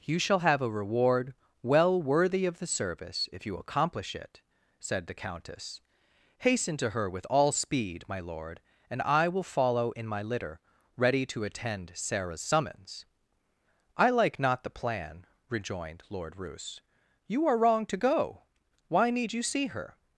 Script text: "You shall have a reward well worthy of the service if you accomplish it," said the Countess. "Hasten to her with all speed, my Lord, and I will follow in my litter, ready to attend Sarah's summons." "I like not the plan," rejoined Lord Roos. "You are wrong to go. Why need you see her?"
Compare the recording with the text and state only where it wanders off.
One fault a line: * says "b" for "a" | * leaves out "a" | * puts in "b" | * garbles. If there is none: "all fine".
all fine